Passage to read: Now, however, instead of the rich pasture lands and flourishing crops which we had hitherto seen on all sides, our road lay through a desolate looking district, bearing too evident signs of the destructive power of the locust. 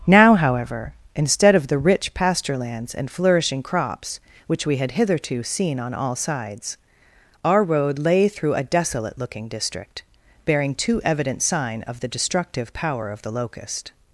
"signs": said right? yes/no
no